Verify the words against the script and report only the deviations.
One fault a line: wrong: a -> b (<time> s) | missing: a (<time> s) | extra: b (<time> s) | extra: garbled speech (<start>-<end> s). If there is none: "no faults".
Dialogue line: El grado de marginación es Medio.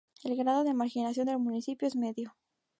extra: del municipio (1.2 s)